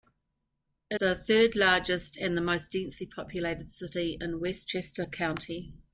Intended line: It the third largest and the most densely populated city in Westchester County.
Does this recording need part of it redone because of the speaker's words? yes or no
no